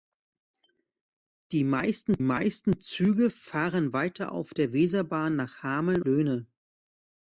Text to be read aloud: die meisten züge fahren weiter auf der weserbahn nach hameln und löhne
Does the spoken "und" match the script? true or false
false